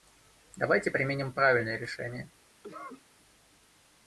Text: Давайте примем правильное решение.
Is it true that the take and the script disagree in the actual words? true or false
false